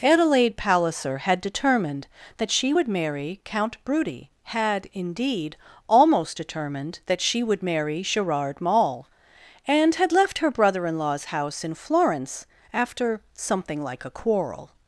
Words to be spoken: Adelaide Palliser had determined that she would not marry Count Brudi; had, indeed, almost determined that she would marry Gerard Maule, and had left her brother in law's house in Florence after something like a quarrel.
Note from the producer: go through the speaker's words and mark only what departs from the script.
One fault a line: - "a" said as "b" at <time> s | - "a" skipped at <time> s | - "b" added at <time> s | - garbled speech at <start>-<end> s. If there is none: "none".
- "not" skipped at 2.9 s